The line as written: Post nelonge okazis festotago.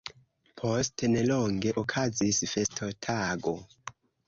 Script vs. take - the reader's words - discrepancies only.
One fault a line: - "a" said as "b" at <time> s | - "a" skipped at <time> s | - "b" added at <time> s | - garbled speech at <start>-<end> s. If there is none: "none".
none